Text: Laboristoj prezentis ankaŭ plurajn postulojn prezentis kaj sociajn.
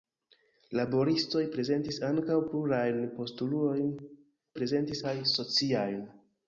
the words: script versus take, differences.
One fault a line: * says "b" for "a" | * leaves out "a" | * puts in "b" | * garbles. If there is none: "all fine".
all fine